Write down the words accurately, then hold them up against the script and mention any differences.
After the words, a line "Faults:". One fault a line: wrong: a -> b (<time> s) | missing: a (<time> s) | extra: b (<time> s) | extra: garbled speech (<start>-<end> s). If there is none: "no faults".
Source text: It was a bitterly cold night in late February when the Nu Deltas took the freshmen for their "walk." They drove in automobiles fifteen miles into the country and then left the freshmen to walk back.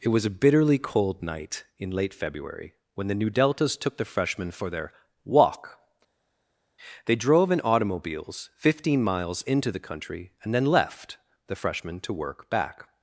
It was a bitterly cold night in late February when the Nu Deltas took the freshmen for their "walk." They drove in automobiles fifteen miles into the country and then left the freshmen to work back.
Faults:
wrong: walk -> work (12.1 s)